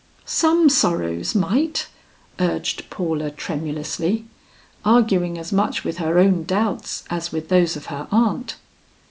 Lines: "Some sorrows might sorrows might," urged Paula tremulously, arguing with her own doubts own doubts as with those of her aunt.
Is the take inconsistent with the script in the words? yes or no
yes